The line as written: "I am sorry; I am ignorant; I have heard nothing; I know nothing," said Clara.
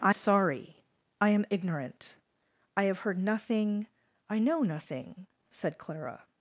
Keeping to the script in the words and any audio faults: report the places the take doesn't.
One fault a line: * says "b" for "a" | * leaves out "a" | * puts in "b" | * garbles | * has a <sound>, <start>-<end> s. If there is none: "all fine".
* leaves out "am"